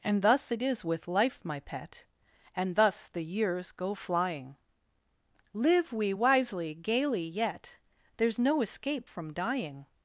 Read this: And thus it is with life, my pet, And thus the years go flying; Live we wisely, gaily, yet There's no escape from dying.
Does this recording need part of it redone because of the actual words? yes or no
no